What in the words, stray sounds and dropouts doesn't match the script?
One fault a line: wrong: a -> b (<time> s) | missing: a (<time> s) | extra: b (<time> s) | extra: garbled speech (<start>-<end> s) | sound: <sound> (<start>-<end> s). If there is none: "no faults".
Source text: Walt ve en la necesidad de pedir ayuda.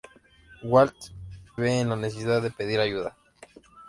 no faults